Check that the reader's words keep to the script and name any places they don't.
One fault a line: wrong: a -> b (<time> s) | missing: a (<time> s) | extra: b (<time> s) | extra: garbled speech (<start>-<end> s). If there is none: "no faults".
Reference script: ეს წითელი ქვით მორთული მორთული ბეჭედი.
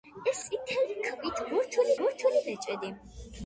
no faults